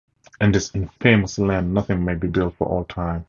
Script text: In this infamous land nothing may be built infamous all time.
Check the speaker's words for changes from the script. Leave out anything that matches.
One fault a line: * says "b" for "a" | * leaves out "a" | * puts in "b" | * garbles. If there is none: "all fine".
* says "for" for "infamous"